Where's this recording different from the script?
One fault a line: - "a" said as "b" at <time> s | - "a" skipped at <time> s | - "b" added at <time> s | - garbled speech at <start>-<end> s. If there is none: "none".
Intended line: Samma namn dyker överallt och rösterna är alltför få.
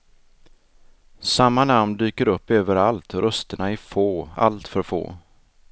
- "upp" added at 2.3 s
- "få" added at 3.8 s